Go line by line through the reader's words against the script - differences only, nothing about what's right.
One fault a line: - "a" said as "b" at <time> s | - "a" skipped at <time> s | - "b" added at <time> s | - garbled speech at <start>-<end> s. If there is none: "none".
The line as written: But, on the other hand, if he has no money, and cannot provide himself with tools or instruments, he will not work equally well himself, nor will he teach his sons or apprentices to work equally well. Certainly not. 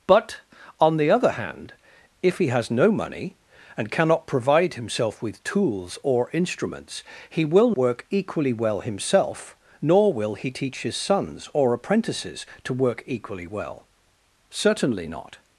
- "not" skipped at 7.7 s